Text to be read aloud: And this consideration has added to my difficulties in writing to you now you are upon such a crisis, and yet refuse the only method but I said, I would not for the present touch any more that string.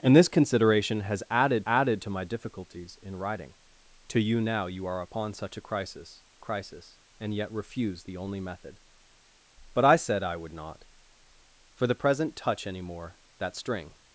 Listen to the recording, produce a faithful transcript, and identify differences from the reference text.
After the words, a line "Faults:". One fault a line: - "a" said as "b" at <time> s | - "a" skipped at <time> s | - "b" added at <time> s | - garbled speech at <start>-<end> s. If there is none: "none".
And this consideration has added added to my difficulties in writing to you now you are upon such a crisis crisis, and yet refuse the only method but I said, I would not for the present touch any more that string.
Faults:
- "added" added at 1.6 s
- "crisis" added at 6.4 s